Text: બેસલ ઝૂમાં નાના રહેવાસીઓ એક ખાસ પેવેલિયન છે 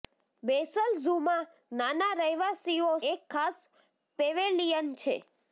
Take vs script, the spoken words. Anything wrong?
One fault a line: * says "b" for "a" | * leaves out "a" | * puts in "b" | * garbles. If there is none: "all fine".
all fine